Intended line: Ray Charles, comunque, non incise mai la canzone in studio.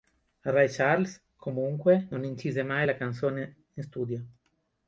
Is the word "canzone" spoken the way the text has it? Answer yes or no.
yes